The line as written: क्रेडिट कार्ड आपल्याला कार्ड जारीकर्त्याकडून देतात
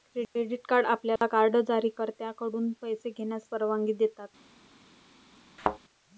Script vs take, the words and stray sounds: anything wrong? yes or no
yes